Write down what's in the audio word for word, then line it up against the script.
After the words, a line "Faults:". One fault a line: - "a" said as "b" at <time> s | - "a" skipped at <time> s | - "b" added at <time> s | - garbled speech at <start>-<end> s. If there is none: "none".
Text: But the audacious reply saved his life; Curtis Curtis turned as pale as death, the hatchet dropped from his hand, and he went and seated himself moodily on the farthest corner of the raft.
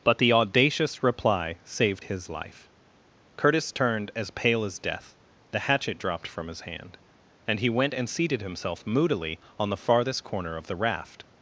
But the audacious reply saved his life; Curtis turned as pale as death, the hatchet dropped from his hand, and he went and seated himself moodily on the farthest corner of the raft.
Faults:
- "Curtis" skipped at 3.7 s